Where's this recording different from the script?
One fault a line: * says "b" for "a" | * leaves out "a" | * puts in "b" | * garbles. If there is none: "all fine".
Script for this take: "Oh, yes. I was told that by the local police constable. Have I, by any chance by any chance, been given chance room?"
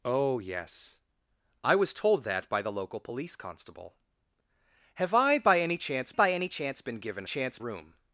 all fine